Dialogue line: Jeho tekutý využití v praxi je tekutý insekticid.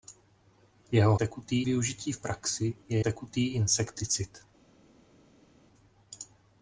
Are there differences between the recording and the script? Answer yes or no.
no